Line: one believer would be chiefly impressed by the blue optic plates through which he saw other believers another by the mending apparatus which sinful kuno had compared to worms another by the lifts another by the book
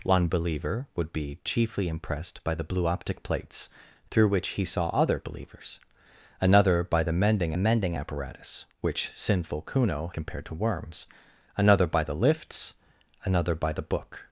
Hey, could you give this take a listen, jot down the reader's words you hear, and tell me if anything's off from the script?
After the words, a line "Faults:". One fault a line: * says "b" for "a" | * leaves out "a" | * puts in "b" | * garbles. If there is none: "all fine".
one believer would be chiefly impressed by the blue optic plates through which he saw other believers another by the mending mending apparatus which sinful kuno compared to worms another by the lifts another by the book
Faults:
* puts in "mending"
* leaves out "had"